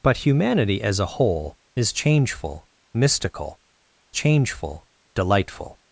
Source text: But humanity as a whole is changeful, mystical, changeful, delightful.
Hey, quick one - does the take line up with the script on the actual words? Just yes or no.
yes